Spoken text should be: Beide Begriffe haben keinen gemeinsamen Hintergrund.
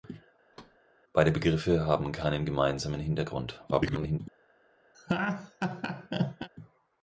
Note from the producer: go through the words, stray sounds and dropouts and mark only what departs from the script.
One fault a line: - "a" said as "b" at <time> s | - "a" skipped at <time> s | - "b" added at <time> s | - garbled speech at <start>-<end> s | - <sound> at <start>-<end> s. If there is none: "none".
- thud at 0.5-0.8 s
- garbled speech at 3.7-4.2 s
- laugh at 4.9-6.5 s